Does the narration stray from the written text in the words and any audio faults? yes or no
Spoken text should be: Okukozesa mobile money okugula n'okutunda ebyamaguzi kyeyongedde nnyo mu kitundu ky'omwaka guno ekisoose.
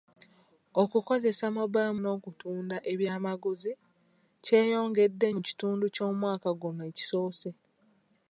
yes